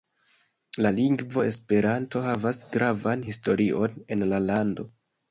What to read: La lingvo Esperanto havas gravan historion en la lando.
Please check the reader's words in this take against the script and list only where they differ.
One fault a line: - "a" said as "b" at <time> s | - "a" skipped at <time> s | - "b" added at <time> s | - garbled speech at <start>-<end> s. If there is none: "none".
none